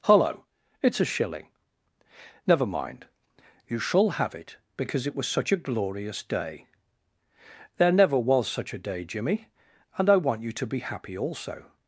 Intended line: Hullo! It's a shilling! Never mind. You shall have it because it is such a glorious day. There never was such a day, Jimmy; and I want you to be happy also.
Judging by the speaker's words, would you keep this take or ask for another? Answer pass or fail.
fail